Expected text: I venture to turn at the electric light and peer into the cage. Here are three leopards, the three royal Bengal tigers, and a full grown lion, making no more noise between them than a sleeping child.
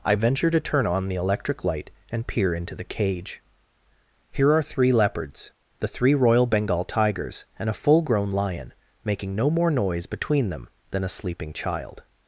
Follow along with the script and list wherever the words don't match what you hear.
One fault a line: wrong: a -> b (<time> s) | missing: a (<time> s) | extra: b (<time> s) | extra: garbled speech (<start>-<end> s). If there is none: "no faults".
wrong: at -> on (0.9 s)